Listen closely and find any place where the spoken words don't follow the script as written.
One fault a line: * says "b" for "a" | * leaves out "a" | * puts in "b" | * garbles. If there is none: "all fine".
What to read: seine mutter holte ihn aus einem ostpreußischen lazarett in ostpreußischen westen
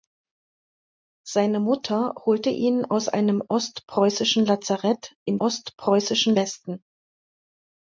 all fine